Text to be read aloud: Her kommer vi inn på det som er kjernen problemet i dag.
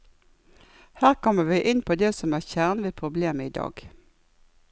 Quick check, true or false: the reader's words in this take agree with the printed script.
false